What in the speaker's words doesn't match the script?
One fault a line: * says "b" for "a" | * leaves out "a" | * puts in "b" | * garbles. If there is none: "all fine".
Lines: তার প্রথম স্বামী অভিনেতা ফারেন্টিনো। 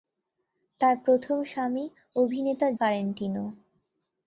all fine